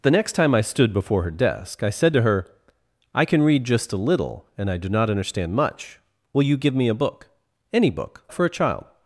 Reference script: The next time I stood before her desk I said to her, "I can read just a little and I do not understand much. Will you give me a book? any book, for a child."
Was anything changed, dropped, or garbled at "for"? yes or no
no